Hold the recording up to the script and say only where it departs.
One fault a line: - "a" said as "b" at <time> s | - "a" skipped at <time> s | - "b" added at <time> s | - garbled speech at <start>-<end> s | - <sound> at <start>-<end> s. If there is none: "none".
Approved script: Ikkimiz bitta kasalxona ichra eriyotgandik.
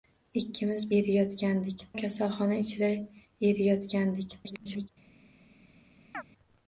- "bitta" said as "eriyotgandik" at 1.0 s
- garbled speech at 4.4-4.9 s
- chirp at 6.1-6.2 s